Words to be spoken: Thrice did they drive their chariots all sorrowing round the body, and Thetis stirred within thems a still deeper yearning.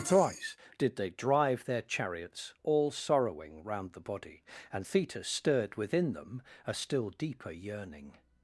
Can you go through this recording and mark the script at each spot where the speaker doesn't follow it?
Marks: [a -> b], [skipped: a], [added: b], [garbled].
Thrice did they drive their chariots all sorrowing round the body, and Thetis stirred within [thems -> them] a still deeper yearning.